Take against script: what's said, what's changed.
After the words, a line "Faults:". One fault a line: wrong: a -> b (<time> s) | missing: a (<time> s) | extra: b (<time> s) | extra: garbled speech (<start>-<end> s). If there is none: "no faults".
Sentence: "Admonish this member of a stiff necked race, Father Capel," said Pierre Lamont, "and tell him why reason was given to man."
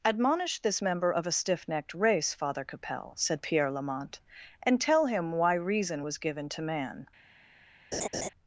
"Admonish this member of a stiff necked race, Father Capel," said Pierre Lamont, "and tell him why reason was given to man."
Faults:
no faults